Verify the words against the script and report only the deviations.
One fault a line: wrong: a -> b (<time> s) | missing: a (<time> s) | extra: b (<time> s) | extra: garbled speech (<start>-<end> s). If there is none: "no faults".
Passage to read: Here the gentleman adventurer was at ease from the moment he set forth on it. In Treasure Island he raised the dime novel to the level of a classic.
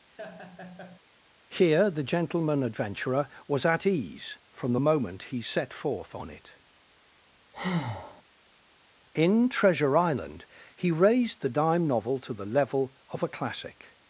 no faults